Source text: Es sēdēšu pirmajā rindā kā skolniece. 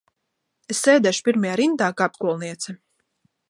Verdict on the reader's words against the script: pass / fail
pass